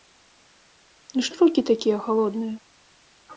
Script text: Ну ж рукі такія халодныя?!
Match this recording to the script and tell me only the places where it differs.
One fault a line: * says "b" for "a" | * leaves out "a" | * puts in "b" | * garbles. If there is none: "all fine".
all fine